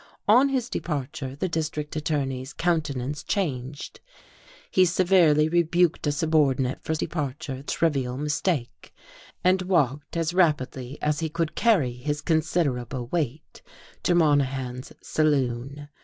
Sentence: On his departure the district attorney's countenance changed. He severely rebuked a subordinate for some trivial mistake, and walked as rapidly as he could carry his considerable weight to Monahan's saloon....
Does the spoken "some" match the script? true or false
false